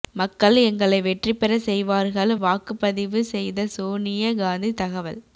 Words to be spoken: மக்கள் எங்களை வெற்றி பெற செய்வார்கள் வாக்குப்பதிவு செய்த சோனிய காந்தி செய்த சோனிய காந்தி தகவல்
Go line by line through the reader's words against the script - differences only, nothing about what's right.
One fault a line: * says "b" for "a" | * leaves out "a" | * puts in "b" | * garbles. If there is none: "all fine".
* leaves out "செய்த சோனிய காந்தி"